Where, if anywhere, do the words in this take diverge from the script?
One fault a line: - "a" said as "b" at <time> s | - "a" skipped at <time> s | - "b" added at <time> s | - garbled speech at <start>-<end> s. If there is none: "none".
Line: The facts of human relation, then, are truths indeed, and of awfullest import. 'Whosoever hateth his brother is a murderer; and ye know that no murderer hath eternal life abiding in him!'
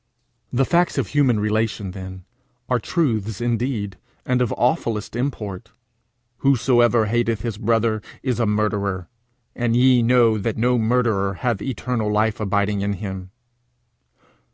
none